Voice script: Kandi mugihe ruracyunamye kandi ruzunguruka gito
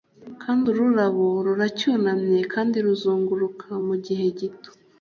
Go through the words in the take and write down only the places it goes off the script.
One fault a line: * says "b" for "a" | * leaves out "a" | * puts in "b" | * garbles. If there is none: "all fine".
* says "ururabo" for "mugihe"
* puts in "mugihe"